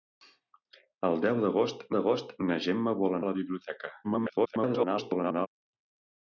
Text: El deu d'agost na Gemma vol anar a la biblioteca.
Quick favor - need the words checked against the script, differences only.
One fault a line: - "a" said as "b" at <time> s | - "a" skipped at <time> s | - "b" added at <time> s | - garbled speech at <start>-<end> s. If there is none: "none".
- "d'agost" added at 2.0 s
- "anar" skipped at 3.2 s
- garbled speech at 4.0-5.5 s